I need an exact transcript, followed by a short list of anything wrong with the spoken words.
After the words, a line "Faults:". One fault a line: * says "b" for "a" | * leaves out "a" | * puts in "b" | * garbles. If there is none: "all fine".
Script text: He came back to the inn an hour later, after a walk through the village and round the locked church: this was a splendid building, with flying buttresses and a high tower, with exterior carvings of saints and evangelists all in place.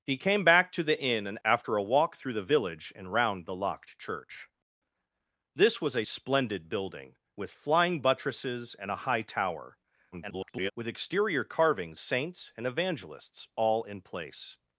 He came back to the inn an after a walk through the village and round the locked church: this was a splendid building, with flying buttresses and a high tower, [garbled] with exterior carvings saints and evangelists all in place.
Faults:
* leaves out "hour later"
* garbles
* leaves out "of"